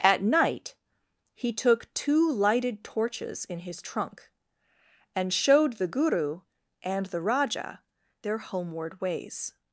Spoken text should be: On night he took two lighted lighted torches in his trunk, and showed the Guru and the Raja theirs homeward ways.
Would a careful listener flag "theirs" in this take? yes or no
yes